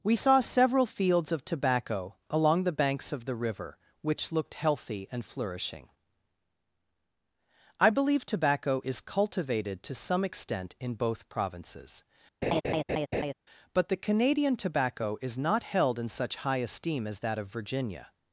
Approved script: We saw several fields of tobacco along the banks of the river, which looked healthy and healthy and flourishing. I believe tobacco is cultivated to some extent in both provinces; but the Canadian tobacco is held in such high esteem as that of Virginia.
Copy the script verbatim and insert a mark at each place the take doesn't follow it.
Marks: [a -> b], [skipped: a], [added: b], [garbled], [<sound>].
We saw several fields of tobacco along the banks of the river, which looked healthy and [skipped: healthy and] flourishing. I believe tobacco is cultivated to some extent in both provinces; [laugh] but the Canadian tobacco is [added: not] held in such high esteem as that of Virginia.